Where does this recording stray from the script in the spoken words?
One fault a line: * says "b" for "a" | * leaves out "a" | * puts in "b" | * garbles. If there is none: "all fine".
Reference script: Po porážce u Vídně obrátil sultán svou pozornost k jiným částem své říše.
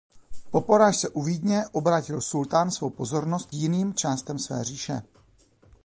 * leaves out "k"